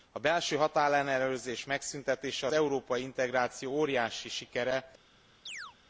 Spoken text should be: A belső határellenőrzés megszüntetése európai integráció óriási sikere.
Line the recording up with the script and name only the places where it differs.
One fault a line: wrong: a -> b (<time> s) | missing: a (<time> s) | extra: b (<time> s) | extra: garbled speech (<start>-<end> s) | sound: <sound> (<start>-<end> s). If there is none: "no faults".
sound: chirp (5.5-5.8 s)